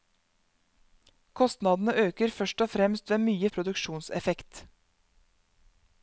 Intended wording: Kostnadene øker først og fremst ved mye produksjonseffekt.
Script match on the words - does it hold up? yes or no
yes